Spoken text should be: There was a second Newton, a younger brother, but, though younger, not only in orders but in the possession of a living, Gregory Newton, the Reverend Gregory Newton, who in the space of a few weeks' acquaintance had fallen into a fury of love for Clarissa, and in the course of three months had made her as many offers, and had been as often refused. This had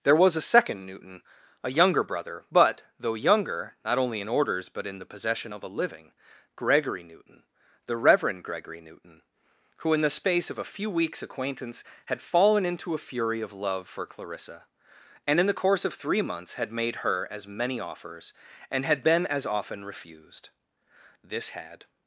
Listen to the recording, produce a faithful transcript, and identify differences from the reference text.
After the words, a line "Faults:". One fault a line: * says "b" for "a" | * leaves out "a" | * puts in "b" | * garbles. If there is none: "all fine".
There was a second Newton, a younger brother, but, though younger, not only in orders but in the possession of a living, Gregory Newton, the Reverend Gregory Newton, who in the space of a few weeks' acquaintance had fallen into a fury of love for Clarissa, and in the course of three months had made her as many offers, and had been as often refused. This had
Faults:
all fine